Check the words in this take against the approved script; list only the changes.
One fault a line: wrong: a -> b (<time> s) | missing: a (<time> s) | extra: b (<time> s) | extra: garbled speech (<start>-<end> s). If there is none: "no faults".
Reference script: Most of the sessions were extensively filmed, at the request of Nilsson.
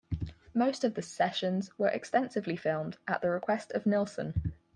no faults